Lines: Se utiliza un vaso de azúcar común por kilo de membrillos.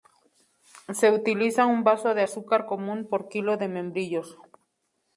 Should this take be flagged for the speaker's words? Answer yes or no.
no